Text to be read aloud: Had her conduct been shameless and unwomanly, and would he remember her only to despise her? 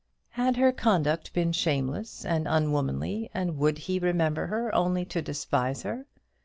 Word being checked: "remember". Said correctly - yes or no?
yes